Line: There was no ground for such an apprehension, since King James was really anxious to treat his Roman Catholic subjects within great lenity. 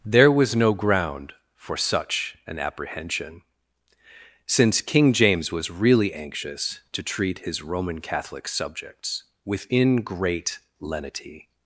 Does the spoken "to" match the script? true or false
true